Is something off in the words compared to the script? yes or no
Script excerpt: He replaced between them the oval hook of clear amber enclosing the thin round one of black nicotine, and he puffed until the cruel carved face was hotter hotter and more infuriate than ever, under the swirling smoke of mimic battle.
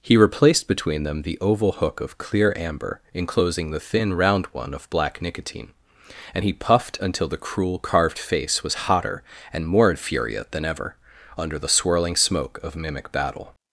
yes